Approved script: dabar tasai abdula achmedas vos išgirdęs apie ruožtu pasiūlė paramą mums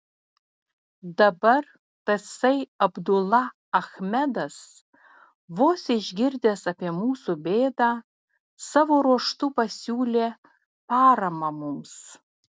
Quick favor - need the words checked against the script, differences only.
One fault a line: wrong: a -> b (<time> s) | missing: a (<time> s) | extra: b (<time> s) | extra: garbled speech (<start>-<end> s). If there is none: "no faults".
extra: mūsų bėdą savo (7.0 s)